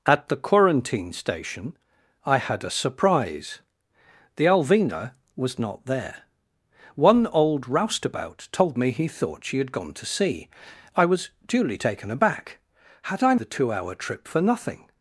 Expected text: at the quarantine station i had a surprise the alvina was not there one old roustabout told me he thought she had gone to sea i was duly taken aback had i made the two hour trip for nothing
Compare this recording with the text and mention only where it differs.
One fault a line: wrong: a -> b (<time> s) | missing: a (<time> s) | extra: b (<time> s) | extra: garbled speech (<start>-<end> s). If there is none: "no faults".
missing: made (13.3 s)